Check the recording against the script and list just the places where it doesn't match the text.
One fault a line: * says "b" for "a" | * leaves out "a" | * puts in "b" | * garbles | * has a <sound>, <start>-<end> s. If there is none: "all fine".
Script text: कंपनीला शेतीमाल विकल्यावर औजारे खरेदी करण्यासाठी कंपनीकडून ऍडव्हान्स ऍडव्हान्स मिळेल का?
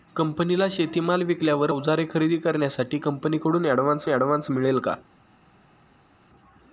all fine